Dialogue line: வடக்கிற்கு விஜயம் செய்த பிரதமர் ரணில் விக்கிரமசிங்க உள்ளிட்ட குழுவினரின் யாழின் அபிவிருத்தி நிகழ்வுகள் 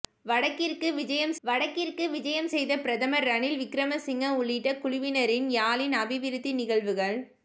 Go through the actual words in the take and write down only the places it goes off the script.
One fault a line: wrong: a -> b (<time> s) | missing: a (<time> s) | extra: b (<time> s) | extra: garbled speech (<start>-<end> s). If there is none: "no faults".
extra: வடக்கிற்கு விஜயம் (1.4 s)